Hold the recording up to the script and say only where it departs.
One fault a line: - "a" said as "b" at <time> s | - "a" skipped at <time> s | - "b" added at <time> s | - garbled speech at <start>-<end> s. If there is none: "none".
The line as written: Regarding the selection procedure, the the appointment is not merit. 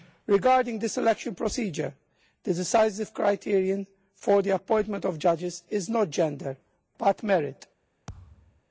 - "decisive criterion for" added at 2.5 s
- "of judges" added at 5.0 s
- "gender but" added at 6.1 s